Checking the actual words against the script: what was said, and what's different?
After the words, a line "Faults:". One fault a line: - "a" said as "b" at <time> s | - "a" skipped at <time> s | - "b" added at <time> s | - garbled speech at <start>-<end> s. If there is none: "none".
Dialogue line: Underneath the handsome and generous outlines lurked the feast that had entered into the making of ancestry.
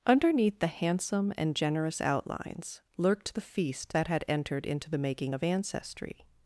Underneath the handsome and generous outlines lurked the feast that had entered into the making of ancestry.
Faults:
none